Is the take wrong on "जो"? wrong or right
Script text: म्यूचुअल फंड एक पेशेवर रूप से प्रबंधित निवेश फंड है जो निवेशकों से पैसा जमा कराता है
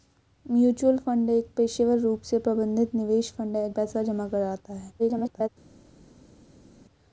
wrong